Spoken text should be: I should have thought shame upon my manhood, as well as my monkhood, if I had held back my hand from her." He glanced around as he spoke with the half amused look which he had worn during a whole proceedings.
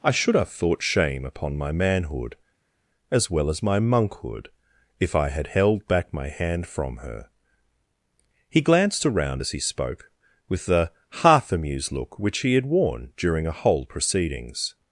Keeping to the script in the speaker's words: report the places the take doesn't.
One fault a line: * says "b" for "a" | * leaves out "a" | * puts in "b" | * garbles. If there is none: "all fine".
all fine